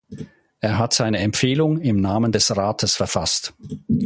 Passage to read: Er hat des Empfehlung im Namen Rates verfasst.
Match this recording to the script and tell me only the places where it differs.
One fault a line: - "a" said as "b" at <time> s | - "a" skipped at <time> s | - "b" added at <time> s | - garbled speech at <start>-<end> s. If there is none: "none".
- "des" said as "seine" at 0.9 s
- "des" added at 2.3 s